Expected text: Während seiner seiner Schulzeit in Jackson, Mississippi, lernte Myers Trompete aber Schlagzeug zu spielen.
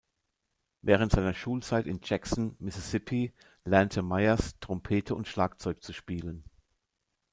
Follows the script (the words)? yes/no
no